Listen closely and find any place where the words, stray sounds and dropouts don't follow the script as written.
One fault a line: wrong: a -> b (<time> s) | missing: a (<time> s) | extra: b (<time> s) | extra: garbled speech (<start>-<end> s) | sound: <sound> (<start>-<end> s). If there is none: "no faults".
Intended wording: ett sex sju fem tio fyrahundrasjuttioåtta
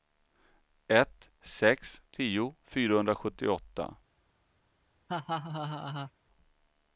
missing: sju fem (2.0 s)
sound: laugh (5.1-6.1 s)